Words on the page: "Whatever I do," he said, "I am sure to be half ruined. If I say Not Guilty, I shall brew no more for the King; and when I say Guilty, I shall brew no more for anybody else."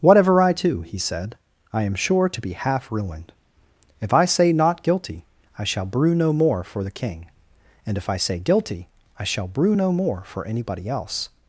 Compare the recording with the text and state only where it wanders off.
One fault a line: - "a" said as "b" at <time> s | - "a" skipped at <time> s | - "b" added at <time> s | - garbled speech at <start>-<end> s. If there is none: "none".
- "when" said as "if" at 8.0 s